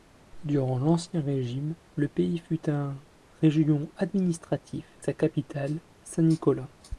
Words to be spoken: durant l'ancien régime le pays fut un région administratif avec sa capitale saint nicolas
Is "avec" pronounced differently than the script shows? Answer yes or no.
yes